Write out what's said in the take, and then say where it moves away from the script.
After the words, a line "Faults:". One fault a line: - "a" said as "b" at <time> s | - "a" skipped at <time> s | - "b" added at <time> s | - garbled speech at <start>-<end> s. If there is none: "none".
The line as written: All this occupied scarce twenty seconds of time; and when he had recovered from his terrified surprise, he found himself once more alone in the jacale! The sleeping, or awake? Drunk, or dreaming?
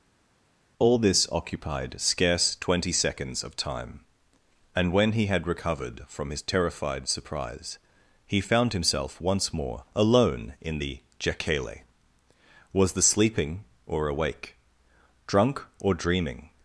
All this occupied scarce twenty seconds of time; and when he had recovered from his terrified surprise, he found himself once more alone in the jacale! Was the sleeping, or awake? Drunk, or dreaming?
Faults:
- "Was" added at 12.7 s